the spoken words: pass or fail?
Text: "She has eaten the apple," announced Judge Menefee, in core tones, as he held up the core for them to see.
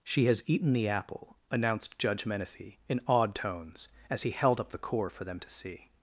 fail